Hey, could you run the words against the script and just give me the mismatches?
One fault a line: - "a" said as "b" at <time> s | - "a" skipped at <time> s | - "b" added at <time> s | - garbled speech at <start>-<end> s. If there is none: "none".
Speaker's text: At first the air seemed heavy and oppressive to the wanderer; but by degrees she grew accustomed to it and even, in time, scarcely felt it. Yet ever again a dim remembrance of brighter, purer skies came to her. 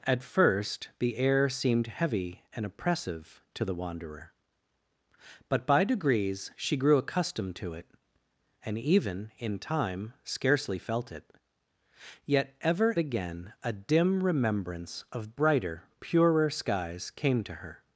none